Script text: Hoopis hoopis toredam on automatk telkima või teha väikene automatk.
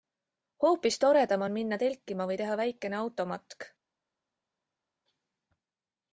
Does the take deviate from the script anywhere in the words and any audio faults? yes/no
yes